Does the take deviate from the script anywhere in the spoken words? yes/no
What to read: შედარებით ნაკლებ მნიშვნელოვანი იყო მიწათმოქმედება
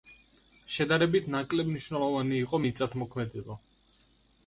no